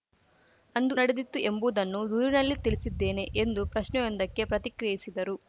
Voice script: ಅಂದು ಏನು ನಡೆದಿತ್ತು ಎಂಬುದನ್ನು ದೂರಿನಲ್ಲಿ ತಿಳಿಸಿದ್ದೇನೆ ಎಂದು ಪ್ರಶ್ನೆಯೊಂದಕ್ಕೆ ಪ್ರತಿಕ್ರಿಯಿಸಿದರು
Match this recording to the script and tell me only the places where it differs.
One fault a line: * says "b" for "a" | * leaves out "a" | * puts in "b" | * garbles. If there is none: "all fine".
* leaves out "ಏನು"